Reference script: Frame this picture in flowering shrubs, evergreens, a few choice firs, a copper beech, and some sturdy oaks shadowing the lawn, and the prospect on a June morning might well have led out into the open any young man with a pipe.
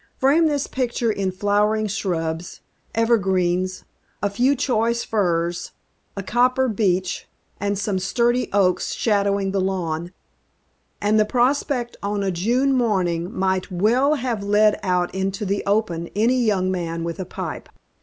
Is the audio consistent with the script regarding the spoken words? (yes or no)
yes